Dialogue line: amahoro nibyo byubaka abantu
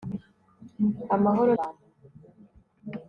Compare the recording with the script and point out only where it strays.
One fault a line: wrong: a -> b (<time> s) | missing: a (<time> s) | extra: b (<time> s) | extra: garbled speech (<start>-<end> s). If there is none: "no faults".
missing: nibyo byubaka (1.5 s)